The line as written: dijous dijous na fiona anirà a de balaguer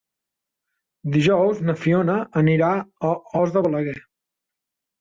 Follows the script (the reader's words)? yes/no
no